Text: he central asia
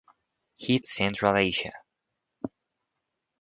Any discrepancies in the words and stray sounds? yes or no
no